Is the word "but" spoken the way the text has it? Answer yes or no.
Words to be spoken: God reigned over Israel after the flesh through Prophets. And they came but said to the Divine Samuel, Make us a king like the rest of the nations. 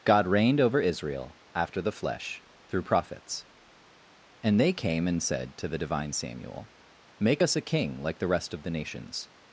no